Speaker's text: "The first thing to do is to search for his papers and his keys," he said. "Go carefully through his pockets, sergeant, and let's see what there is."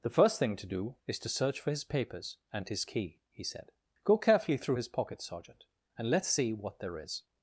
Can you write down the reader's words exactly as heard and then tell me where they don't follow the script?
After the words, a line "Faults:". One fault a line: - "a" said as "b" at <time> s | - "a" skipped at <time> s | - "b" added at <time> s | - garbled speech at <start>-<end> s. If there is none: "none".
"The first thing to do is to search for his papers and his key," he said. "Go carefully through his pockets, sergeant, and let's see what there is."
Faults:
- "keys" said as "key" at 2.9 s